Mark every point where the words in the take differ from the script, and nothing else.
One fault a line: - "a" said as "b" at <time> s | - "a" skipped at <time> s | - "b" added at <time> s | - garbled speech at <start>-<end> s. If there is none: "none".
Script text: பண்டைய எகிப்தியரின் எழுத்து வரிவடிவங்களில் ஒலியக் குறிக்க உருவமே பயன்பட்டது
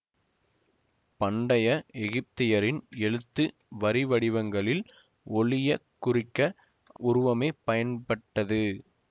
none